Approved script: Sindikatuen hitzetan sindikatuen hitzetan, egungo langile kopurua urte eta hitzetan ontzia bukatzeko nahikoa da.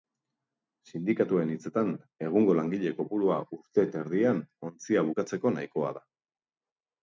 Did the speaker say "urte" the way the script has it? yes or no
yes